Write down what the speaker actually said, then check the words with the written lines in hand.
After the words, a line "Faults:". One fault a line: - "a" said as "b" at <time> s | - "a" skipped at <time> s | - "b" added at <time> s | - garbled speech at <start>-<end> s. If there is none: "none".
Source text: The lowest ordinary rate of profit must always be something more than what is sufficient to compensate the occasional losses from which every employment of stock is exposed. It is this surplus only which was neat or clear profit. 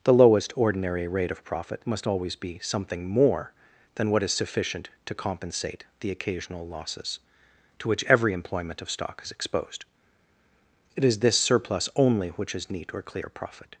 The lowest ordinary rate of profit must always be something more than what is sufficient to compensate the occasional losses to which every employment of stock is exposed. It is this surplus only which is neat or clear profit.
Faults:
- "from" said as "to" at 7.8 s
- "was" said as "is" at 12.6 s